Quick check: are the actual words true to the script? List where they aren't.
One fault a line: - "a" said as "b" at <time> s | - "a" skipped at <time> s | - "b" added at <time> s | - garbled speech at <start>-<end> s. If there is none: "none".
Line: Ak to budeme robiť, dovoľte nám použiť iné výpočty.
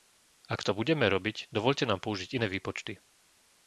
none